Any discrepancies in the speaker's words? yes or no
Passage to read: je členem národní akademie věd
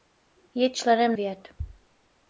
yes